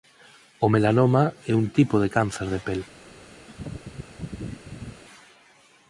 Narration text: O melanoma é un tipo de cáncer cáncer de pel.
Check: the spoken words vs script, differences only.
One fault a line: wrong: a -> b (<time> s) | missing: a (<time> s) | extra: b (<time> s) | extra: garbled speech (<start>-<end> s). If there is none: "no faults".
missing: cáncer (2.5 s)